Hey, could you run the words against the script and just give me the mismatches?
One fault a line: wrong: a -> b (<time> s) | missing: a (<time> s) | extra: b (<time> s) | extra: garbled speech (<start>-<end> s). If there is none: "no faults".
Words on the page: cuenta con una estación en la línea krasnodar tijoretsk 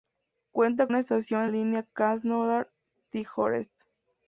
missing: con (0.9 s)
missing: la (1.5 s)